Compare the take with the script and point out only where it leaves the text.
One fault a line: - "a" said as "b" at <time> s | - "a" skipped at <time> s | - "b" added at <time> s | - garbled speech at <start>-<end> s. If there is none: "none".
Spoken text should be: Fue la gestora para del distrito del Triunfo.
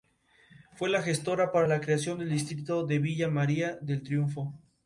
- "la creación" added at 1.6 s
- "de Villa María" added at 2.9 s